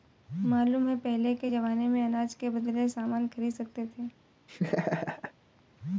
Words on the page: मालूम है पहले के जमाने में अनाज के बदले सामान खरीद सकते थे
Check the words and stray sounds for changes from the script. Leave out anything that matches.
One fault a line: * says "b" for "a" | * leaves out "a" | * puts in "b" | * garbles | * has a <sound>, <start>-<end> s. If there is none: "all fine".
* has a laugh, 4.5-5.3 s